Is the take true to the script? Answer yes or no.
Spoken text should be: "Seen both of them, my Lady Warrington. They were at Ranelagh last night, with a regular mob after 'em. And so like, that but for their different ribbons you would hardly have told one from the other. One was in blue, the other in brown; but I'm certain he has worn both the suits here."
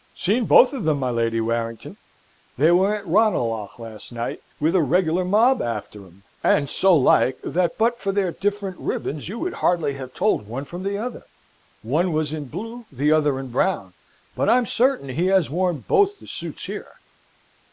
yes